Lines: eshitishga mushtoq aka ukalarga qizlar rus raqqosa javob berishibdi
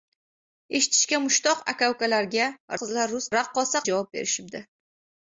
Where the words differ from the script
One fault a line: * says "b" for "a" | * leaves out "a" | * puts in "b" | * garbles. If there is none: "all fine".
all fine